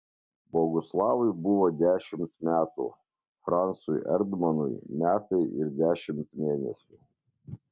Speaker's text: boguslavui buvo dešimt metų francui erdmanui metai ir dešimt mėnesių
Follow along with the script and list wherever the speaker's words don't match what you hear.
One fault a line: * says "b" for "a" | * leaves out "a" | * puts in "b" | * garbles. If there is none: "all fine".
all fine